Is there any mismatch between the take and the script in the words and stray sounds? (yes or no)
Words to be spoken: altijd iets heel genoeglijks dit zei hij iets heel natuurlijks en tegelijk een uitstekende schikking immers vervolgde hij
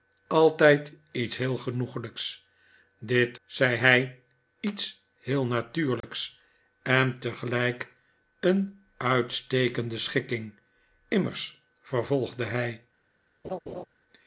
yes